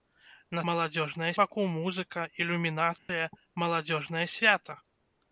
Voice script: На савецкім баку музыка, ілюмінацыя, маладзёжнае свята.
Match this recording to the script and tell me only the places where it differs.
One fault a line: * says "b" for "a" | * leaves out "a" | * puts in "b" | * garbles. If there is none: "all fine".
* says "маладзёжнае" for "савецкім"